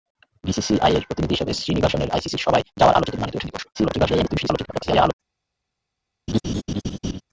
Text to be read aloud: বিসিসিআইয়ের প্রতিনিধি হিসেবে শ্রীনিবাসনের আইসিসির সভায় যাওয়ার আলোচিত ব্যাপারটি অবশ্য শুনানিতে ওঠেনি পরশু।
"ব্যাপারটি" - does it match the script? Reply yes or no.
no